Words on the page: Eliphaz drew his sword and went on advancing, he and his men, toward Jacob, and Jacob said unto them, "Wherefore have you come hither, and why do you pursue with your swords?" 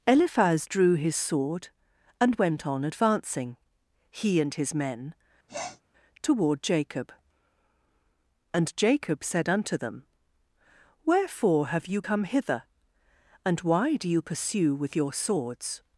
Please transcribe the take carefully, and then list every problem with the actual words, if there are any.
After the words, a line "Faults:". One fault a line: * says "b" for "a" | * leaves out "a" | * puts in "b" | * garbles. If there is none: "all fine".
Eliphaz drew his sword and went on advancing, he and his men, toward Jacob, and Jacob said unto them, "Wherefore have you come hither, and why do you pursue with your swords?"
Faults:
all fine